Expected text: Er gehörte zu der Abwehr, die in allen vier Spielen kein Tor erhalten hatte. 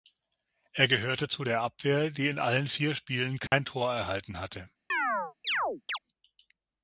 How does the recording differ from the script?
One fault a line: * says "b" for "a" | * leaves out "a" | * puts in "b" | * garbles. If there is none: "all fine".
all fine